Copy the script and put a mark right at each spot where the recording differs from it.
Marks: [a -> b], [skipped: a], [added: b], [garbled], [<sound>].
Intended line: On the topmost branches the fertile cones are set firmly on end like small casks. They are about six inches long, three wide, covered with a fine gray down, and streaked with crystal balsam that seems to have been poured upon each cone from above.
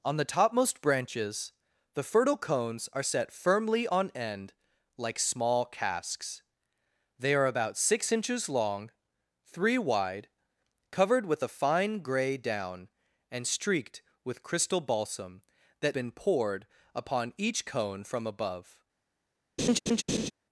On the topmost branches the fertile cones are set firmly on end like small casks. They are about six inches long, three wide, covered with a fine gray down, and streaked with crystal balsam that [skipped: seems to have] been poured upon each cone from above. [laugh]